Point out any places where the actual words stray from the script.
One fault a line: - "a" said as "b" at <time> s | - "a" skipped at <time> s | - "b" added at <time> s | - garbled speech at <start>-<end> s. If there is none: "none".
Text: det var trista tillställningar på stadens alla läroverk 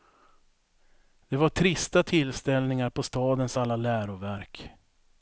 none